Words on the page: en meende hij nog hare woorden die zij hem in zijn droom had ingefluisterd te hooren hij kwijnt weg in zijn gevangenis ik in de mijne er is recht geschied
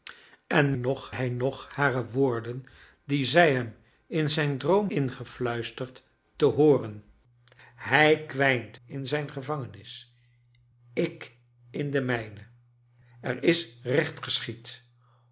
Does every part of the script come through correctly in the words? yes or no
no